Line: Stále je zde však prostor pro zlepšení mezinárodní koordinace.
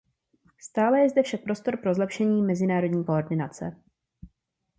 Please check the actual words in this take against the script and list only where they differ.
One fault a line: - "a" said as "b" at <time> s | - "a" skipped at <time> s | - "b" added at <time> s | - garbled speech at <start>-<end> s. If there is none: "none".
none